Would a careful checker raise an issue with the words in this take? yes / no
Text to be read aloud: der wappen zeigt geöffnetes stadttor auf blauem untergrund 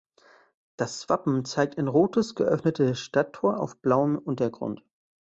yes